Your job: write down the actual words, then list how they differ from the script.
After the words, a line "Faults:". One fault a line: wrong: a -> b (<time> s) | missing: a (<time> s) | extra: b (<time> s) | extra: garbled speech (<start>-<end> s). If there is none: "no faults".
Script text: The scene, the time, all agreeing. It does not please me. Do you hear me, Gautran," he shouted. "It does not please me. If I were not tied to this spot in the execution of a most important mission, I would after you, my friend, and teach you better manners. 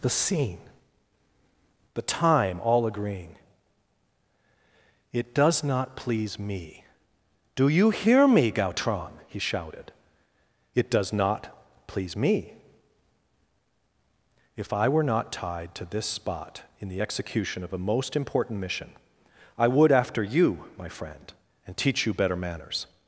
The scene, the time, all agreeing. It does not please me. Do you hear me, Gautran," he shouted. "It does not please me. If I were not tied to this spot in the execution of a most important mission, I would after you, my friend, and teach you better manners.
Faults:
no faults